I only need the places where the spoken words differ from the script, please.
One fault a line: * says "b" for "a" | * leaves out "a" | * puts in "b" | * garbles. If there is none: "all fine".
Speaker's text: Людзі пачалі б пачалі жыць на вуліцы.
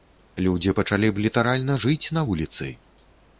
* says "літаральна" for "пачалі"